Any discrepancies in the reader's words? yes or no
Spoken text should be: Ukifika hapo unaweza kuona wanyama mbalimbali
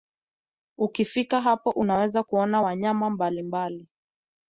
no